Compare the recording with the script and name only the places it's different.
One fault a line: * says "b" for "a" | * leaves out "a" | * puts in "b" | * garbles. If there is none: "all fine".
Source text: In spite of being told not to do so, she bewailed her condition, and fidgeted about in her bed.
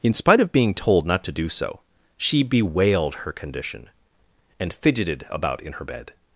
all fine